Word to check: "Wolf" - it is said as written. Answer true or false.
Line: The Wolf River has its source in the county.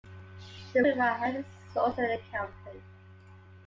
false